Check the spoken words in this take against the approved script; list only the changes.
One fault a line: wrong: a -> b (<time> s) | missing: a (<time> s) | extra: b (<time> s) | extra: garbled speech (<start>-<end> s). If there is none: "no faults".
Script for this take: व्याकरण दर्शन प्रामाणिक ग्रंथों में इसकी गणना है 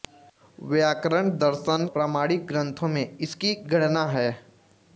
no faults